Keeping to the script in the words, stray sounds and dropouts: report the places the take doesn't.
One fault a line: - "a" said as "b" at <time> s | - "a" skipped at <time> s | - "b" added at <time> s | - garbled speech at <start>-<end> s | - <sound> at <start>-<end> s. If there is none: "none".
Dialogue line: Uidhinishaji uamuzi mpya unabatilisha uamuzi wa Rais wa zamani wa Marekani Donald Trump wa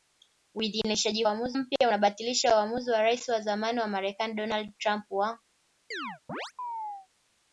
- chirp at 5.9-7.1 s